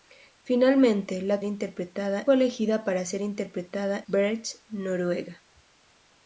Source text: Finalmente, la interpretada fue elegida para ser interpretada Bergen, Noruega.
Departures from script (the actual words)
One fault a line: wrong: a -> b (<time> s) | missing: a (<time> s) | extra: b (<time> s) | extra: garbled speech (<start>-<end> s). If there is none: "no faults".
no faults